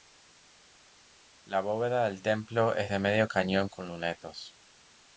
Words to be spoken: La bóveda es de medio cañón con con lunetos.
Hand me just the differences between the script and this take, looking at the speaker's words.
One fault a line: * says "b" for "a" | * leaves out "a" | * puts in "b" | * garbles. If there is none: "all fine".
* puts in "del templo"
* leaves out "con"